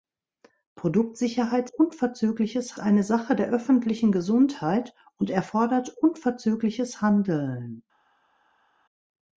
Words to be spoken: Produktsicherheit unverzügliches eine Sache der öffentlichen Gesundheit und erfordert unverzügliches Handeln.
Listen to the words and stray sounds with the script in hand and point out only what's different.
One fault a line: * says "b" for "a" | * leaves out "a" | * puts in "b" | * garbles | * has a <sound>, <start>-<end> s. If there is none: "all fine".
all fine